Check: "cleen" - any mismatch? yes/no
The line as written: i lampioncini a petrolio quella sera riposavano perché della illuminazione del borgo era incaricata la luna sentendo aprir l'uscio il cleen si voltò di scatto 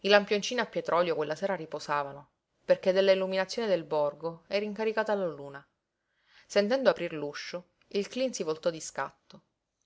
no